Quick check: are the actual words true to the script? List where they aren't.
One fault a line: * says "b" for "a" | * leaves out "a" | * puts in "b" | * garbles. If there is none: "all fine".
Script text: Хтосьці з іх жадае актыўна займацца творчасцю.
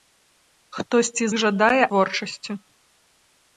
* leaves out "з"
* leaves out "актыўна займацца"